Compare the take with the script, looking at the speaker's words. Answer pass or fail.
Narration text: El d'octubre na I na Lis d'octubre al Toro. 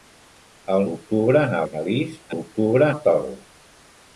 pass